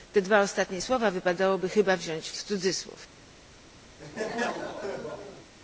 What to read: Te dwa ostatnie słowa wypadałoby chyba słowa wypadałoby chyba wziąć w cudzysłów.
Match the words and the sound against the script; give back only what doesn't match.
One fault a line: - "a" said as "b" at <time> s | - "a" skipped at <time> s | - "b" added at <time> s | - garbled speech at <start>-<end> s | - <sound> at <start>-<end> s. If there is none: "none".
- "słowa wypadałoby chyba" skipped at 2.0 s
- laugh at 4.0-5.5 s